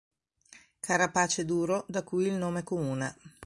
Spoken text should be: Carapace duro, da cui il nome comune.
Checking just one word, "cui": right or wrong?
right